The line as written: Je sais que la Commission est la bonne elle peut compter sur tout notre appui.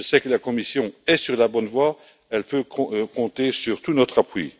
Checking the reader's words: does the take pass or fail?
fail